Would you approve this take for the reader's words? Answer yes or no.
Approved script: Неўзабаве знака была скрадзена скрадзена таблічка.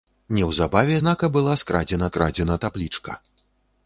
yes